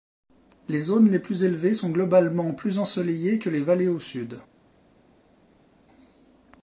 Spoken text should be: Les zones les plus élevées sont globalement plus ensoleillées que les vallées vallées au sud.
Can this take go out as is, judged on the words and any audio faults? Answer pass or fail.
fail